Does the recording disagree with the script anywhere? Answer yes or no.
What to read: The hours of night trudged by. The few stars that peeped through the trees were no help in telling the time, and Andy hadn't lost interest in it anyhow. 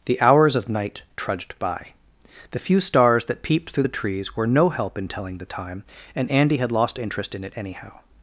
yes